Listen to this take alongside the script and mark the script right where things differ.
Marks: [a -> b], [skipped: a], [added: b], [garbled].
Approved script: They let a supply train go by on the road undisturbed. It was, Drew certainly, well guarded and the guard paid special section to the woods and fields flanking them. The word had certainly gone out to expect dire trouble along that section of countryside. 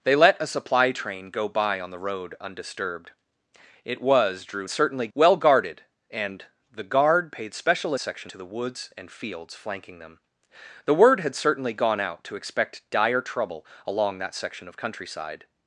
They let a supply train go by on the road undisturbed. It was, Drew certainly, well guarded and the guard paid special section to the woods and fields flanking them. The word had certainly gone out to expect dire trouble along that section of countryside.